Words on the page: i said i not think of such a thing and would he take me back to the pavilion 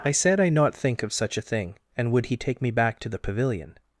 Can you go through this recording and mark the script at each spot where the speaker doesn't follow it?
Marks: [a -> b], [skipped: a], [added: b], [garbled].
i said i not think of such a thing and would he take me back to the pavilion